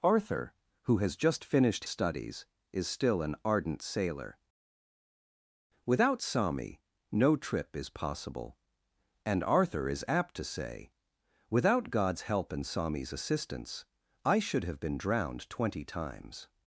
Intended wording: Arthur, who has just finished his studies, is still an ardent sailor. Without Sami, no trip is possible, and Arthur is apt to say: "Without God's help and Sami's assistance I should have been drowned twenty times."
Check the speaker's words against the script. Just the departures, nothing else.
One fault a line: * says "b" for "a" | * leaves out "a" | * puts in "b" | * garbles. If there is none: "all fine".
* leaves out "his"